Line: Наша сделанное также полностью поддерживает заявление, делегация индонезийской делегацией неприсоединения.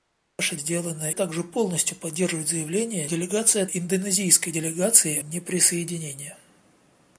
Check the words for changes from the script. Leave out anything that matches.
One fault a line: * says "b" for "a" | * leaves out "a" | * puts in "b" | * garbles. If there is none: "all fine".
all fine